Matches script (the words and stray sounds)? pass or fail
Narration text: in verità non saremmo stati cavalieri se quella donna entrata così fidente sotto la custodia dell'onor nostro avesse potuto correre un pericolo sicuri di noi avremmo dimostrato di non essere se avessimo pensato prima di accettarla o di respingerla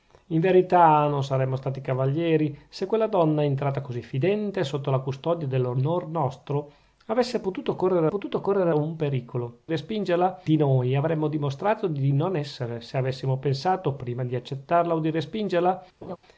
fail